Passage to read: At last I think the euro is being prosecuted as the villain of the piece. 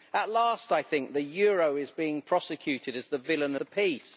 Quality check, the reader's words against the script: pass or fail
fail